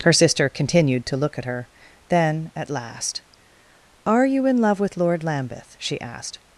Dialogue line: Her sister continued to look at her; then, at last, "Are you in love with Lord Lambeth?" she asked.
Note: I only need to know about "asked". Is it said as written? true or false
true